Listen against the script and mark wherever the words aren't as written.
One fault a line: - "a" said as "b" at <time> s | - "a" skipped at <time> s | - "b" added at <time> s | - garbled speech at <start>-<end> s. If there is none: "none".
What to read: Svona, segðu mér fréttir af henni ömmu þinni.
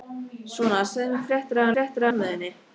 - "henni" said as "fréttir" at 1.7 s